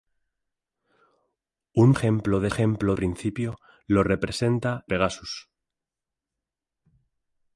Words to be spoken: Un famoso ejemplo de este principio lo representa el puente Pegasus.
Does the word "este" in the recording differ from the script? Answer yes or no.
yes